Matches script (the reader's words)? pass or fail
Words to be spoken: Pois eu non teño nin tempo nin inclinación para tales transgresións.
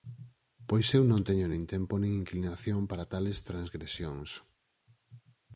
pass